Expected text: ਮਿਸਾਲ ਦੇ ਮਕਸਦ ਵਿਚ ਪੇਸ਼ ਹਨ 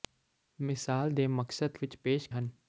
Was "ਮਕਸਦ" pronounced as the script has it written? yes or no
yes